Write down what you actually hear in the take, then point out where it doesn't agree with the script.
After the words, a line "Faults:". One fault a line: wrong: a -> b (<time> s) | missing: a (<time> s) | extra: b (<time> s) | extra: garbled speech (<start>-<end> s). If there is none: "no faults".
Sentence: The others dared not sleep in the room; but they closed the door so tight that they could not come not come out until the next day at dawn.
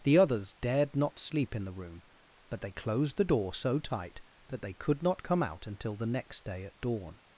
The others dared not sleep in the room; but they closed the door so tight that they could not come out until the next day at dawn.
Faults:
missing: not come (5.4 s)